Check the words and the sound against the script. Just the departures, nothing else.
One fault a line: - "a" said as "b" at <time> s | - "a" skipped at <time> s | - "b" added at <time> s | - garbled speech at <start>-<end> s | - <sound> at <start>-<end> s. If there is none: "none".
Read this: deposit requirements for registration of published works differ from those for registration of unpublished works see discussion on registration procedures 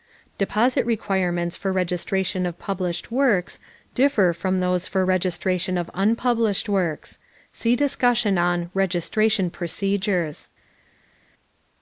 none